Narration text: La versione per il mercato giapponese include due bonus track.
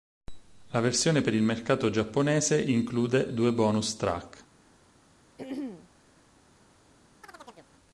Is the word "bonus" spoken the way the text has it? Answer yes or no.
yes